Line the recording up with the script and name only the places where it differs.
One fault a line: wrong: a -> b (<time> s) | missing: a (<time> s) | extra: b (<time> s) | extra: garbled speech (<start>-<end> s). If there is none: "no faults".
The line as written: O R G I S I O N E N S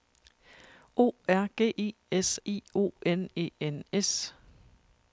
no faults